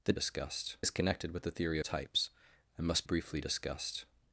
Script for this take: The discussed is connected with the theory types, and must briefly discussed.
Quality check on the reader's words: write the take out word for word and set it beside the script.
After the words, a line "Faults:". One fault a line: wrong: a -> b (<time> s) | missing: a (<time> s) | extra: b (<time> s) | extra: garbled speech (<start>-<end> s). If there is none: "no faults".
The discussed is connected with the theory types, and must briefly discussed.
Faults:
no faults